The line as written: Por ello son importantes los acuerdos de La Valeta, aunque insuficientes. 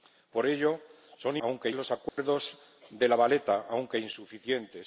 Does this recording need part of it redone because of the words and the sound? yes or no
yes